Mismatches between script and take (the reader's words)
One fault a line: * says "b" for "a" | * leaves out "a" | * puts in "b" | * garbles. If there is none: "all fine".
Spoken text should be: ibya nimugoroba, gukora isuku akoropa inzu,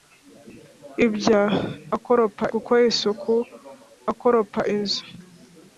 * says "akoropa" for "nimugoroba"